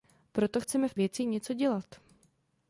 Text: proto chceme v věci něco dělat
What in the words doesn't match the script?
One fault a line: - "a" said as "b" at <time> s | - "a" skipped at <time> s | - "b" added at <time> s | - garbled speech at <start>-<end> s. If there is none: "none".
none